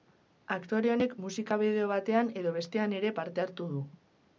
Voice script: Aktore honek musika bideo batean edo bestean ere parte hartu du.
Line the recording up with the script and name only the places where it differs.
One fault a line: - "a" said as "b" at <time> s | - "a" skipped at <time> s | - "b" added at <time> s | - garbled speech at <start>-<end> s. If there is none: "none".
none